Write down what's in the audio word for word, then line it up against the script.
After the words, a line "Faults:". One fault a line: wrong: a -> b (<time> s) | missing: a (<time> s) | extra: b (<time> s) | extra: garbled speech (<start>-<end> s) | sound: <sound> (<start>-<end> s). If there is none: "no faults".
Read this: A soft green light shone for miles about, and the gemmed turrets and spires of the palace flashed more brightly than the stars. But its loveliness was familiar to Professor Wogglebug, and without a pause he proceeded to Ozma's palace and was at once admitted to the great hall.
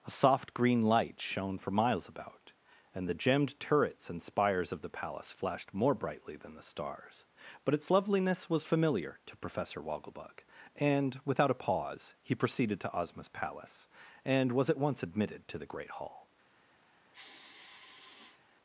A soft green light shone for miles about, and the gemmed turrets and spires of the palace flashed more brightly than the stars. But its loveliness was familiar to Professor Wogglebug, and without a pause he proceeded to Ozma's palace and was at once admitted to the great hall.
Faults:
sound: sigh (17.1-18.4 s)